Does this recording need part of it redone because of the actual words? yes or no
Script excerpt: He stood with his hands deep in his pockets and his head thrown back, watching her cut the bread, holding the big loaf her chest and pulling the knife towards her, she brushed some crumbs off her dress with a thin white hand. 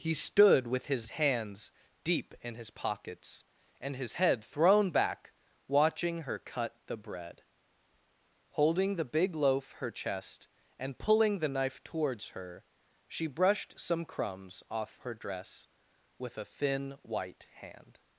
no